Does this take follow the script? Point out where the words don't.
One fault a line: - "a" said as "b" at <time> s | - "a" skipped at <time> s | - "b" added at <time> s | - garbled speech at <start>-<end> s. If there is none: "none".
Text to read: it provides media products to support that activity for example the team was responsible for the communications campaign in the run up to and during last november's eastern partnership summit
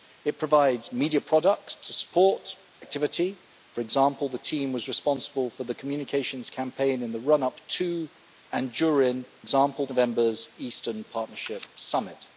- "that" skipped at 2.5 s
- "last" said as "example" at 9.4 s